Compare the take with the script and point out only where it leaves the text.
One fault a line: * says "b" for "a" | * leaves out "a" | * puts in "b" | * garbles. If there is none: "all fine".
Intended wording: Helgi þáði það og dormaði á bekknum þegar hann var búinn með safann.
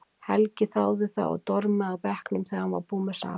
all fine